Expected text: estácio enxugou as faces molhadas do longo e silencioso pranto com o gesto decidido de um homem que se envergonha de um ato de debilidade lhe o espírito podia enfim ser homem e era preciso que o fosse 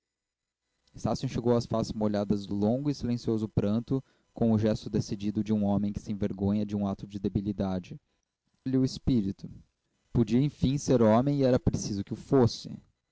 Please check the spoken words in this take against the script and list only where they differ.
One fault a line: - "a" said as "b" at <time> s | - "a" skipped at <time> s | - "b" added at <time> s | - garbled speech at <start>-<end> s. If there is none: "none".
none